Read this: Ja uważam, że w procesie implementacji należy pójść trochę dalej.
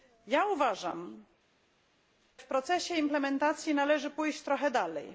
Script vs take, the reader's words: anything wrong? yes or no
yes